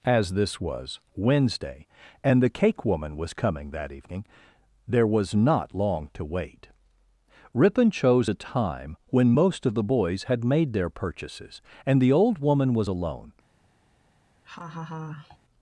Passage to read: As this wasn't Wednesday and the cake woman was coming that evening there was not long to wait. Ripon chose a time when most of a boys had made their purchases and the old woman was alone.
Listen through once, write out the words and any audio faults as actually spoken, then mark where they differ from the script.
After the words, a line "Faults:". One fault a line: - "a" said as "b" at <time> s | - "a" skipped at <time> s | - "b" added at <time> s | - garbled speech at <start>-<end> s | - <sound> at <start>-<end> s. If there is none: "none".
As this was Wednesday and the cake woman was coming that evening there was not long to wait. Ripon chose a time when most of the boys had made their purchases and the old woman was alone.
Faults:
- "wasn't" said as "was" at 0.6 s
- "a" said as "the" at 9.7 s
- laugh at 14.4-15.4 s